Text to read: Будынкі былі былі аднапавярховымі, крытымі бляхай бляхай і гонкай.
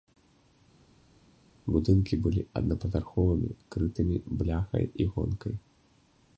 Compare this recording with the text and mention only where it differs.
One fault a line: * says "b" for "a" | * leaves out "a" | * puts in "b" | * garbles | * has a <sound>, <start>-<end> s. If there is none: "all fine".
* leaves out "былі"
* leaves out "бляхай"